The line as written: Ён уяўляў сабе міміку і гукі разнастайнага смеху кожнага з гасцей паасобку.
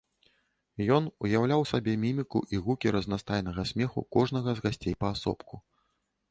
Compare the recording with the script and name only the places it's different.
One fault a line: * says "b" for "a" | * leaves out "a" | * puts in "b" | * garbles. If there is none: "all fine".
all fine